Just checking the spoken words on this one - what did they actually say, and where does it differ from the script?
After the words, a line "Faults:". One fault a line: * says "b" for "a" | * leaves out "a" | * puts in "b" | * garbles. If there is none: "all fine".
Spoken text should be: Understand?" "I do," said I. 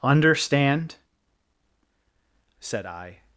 Understand," "said I.
Faults:
* leaves out "I do"